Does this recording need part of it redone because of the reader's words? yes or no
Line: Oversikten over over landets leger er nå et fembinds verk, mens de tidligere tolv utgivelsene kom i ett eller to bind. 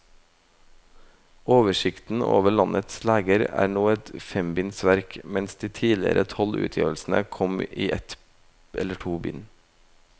yes